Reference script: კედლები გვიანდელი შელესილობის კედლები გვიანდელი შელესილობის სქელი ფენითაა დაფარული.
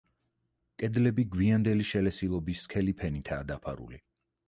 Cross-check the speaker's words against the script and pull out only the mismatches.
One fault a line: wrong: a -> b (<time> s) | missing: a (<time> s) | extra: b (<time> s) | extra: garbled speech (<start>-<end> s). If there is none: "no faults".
missing: კედლები გვიანდელი შელესილობის (2.7 s)